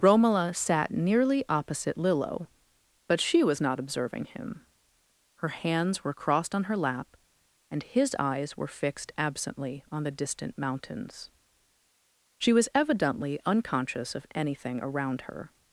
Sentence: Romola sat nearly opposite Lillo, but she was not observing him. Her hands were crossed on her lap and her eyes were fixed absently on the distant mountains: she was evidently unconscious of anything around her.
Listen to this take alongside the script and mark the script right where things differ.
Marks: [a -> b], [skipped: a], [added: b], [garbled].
Romola sat nearly opposite Lillo, but she was not observing him. Her hands were crossed on her lap and [her -> his] eyes were fixed absently on the distant mountains: she was evidently unconscious of anything around her.